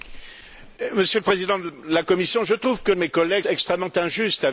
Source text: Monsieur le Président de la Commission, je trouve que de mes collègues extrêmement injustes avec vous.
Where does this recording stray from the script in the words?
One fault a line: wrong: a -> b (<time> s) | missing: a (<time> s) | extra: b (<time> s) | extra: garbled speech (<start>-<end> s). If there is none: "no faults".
no faults